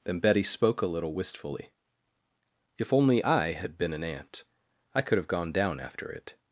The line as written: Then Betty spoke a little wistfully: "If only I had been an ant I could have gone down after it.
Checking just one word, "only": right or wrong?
right